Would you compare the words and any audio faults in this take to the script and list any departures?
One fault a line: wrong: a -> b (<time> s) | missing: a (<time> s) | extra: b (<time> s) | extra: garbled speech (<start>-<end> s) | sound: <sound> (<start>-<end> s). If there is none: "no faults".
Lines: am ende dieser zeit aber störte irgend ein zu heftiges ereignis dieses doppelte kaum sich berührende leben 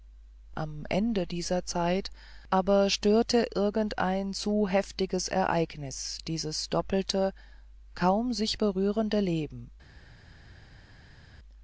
no faults